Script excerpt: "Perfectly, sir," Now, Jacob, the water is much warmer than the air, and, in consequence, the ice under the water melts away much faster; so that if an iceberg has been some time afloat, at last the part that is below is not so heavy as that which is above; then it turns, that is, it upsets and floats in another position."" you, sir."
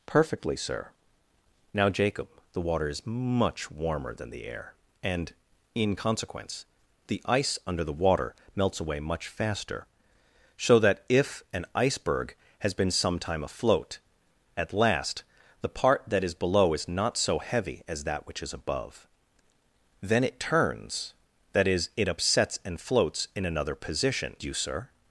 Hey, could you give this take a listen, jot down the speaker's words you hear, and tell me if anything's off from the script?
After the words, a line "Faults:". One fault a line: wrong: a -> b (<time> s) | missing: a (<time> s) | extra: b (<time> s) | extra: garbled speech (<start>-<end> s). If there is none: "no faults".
"Perfectly, sir," Now, Jacob, the water is much warmer than the air, and, in consequence, the ice under the water melts away much faster; so that if an iceberg has been some time afloat, at last the part that is below is not so heavy as that which is above; then it turns, that is, it upsets and floats in another position."" you, sir."
Faults:
no faults